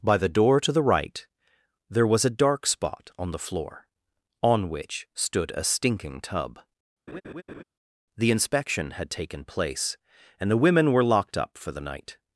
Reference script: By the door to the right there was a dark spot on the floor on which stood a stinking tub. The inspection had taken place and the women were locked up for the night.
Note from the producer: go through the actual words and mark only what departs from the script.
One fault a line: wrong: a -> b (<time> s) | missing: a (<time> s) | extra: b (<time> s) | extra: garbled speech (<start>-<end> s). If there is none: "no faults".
no faults